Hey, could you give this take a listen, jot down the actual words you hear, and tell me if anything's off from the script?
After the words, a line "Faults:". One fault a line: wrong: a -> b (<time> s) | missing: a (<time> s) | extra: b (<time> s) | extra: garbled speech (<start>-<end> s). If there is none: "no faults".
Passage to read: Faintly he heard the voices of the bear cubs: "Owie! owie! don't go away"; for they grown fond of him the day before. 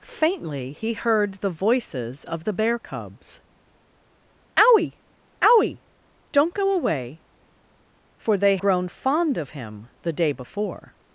Faintly he heard the voices of the bear cubs: "Owie! owie! don't go away"; for they grown fond of him the day before.
Faults:
no faults